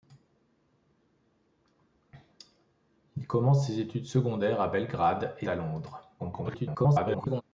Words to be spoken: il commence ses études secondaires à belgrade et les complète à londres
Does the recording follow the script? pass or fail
fail